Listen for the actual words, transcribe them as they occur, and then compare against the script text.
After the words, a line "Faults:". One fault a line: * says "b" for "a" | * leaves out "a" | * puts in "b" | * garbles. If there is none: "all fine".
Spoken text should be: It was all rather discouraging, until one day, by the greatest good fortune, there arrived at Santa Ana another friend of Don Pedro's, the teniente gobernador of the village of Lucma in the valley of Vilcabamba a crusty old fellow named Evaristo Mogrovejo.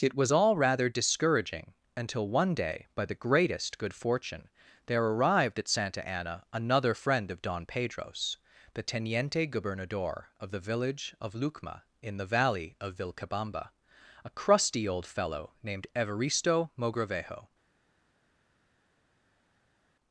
It was all rather discouraging, until one day, by the greatest good fortune, there arrived at Santa Ana another friend of Don Pedro's, the teniente gobernador of the village of Lucma in the valley of Vilcabamba a crusty old fellow named Evaristo Mogrovejo.
Faults:
all fine